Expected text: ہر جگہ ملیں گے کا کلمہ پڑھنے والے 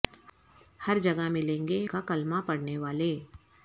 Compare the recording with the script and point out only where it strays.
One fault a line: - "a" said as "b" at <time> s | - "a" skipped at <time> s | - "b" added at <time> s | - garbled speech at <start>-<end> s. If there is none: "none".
none